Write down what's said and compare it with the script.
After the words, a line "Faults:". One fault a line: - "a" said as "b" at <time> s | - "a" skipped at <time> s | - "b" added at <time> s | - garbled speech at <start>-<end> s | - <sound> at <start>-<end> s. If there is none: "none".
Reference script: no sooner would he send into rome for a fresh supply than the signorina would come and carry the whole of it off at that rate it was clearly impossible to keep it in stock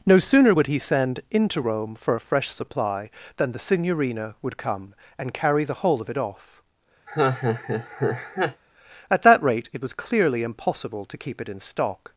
no sooner would he send into rome for a fresh supply than the signorina would come and carry the whole of it off at that rate it was clearly impossible to keep it in stock
Faults:
- laugh at 7.1-8.6 s